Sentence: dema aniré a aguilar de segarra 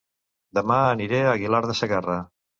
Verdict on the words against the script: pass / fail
pass